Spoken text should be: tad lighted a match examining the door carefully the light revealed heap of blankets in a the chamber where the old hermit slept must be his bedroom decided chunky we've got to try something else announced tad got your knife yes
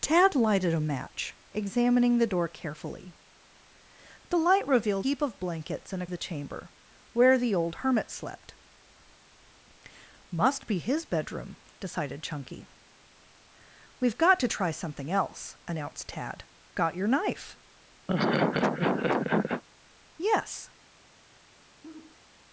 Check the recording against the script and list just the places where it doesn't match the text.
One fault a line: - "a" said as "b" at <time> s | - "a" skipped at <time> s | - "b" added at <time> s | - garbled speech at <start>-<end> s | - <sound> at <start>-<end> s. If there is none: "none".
- laugh at 18.1-19.6 s
- sigh at 21.8-22.2 s